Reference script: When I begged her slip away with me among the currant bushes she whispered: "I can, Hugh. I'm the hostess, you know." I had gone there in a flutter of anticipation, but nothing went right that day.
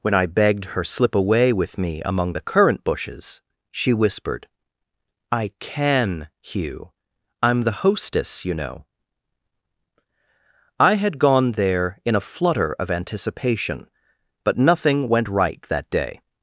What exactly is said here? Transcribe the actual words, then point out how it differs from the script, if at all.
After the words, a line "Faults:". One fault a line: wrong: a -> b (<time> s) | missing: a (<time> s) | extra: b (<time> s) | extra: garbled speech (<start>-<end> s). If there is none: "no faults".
When I begged her slip away with me among the currant bushes she whispered: "I can, Hugh. I'm the hostess, you know." I had gone there in a flutter of anticipation, but nothing went right that day.
Faults:
no faults